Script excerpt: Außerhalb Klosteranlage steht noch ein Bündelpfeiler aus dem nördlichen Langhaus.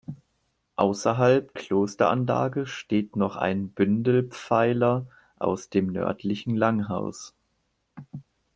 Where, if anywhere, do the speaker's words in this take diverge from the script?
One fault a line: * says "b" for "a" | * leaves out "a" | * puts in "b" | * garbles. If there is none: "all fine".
all fine